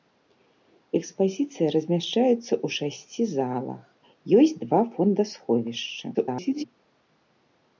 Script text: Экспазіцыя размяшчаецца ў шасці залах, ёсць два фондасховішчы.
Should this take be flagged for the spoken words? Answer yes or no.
yes